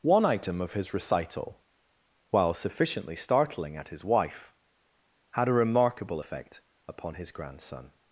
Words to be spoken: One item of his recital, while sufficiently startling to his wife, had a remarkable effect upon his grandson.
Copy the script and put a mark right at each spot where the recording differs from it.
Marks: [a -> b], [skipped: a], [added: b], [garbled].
One item of his recital, while sufficiently startling [to -> at] his wife, had a remarkable effect upon his grandson.